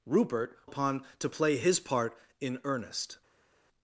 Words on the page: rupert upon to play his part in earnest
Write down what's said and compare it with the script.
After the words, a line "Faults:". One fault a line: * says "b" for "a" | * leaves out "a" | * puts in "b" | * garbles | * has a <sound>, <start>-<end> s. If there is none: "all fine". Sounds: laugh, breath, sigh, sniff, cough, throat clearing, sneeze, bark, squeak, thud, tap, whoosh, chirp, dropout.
rupert upon to play his part in earnest
Faults:
all fine